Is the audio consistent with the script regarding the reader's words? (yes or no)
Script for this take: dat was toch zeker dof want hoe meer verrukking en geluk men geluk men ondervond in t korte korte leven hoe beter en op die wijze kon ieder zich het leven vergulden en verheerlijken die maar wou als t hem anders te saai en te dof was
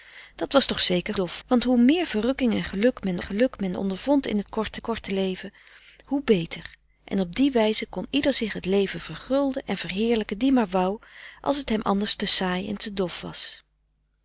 yes